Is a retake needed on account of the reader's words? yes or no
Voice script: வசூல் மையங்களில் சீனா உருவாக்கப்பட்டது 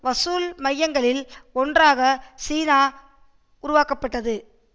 yes